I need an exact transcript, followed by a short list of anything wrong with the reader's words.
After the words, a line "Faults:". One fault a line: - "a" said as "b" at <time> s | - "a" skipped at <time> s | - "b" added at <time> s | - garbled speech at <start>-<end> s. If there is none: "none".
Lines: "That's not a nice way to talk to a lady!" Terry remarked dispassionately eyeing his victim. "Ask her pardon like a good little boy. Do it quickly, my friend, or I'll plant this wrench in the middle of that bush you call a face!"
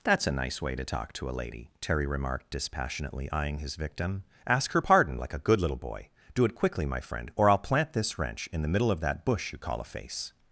"That's a nice way to talk to a lady!" Terry remarked dispassionately eyeing his victim. "Ask her pardon like a good little boy. Do it quickly, my friend, or I'll plant this wrench in the middle of that bush you call a face!"
Faults:
- "not" skipped at 0.2 s